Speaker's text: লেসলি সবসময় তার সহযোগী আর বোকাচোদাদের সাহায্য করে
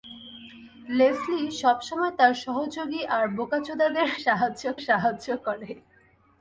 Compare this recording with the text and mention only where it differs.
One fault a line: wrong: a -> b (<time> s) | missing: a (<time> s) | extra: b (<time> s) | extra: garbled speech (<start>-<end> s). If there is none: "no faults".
extra: সাহায্য (4.9 s)